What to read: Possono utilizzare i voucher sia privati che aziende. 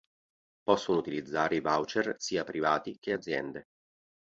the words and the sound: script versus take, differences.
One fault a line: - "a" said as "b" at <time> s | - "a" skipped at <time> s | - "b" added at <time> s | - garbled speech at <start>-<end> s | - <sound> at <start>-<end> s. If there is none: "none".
none